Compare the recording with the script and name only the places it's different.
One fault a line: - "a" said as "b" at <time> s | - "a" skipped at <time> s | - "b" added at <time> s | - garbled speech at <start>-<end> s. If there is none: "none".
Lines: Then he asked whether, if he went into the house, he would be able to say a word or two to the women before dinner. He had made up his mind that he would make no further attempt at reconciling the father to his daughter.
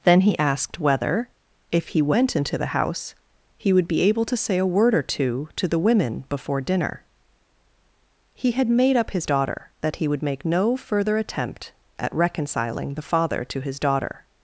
- "mind" said as "daughter" at 9.3 s